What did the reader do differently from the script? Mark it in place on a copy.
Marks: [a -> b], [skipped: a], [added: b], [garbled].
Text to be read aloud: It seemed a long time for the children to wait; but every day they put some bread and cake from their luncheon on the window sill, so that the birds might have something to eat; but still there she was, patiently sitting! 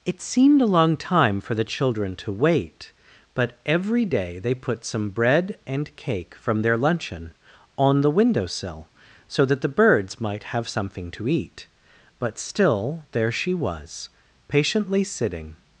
It seemed a long time for the children to wait; but every day they put some bread and cake from their luncheon on the window sill, so that the birds might have something to eat; but still there she was, patiently sitting!